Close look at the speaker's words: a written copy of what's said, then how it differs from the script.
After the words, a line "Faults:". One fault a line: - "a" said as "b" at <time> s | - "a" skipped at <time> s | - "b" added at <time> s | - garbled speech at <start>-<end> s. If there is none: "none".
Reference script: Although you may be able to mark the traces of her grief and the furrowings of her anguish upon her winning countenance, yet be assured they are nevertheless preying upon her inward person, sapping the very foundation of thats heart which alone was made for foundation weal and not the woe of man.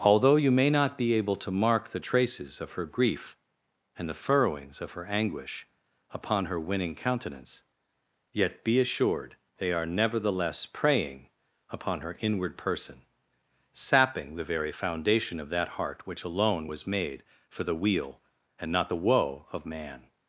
Although you may not be able to mark the traces of her grief and the furrowings of her anguish upon her winning countenance, yet be assured they are nevertheless preying upon her inward person, sapping the very foundation of that heart which alone was made for the weal and not the woe of man.
Faults:
- "not" added at 0.7 s
- "thats" said as "that" at 15.5 s
- "foundation" said as "the" at 17.6 s